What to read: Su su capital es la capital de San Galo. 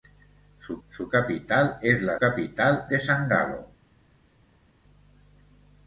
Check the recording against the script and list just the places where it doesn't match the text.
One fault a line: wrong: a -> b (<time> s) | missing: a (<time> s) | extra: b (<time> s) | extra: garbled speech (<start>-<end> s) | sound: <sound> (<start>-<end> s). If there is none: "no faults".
no faults